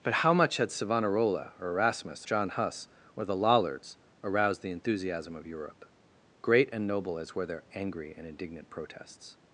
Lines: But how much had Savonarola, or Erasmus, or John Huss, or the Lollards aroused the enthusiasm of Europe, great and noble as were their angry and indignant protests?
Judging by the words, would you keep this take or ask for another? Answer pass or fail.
fail